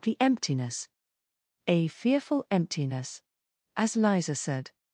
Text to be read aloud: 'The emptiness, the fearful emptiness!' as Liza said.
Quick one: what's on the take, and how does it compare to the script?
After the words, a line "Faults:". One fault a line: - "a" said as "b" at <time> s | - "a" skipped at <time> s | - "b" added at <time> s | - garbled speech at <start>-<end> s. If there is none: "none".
'The emptiness, a fearful emptiness!' as Liza said.
Faults:
- "the" said as "a" at 1.7 s